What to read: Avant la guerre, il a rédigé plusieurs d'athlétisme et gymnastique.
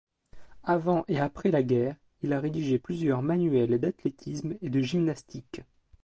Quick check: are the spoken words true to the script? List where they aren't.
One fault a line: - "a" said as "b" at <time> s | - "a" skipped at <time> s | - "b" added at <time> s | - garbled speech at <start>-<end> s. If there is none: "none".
- "et après" added at 1.1 s
- "manuels" added at 3.2 s
- "de" added at 4.7 s